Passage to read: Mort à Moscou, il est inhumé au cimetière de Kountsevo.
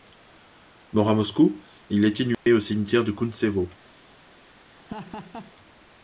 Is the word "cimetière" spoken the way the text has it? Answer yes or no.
yes